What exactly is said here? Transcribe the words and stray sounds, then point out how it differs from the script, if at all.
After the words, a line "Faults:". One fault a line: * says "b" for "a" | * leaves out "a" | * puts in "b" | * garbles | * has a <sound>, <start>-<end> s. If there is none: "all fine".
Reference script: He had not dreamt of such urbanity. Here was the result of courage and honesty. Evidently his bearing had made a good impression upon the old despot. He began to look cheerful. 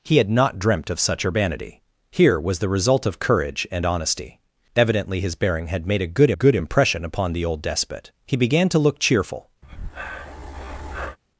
He had not dreamt of such urbanity. Here was the result of courage and honesty. Evidently his bearing had made a good good impression upon the old despot. He began to look cheerful.
Faults:
* puts in "good"
* has a breath, 9.6-11.2 s